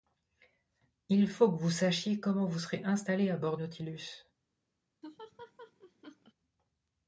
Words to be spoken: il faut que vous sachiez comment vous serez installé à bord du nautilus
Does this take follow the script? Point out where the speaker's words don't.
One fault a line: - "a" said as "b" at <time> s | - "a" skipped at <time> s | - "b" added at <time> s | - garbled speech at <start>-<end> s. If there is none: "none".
- "du" skipped at 3.6 s